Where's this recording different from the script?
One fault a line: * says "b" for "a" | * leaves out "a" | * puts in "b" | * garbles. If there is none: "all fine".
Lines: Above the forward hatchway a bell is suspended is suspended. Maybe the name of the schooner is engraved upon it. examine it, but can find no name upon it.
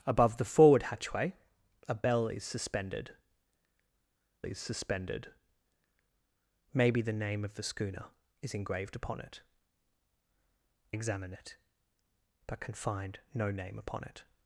all fine